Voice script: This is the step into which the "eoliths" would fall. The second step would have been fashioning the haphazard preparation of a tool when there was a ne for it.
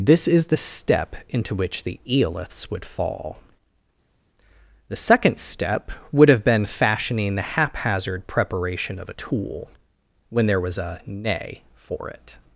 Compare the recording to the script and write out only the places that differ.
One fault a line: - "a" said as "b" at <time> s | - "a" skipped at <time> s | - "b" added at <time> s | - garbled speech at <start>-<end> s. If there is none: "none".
none